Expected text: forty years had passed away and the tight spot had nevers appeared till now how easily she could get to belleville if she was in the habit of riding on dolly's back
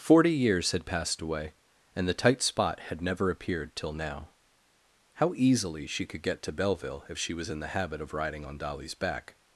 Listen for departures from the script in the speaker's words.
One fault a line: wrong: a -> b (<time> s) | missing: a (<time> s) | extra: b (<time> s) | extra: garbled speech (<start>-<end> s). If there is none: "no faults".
wrong: nevers -> never (3.0 s)